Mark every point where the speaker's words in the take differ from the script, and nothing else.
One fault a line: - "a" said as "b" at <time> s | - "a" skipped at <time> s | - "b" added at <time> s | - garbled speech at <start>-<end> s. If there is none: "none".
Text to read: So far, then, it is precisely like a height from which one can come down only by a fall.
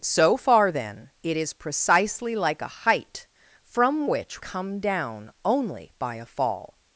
- "one can" skipped at 4.4 s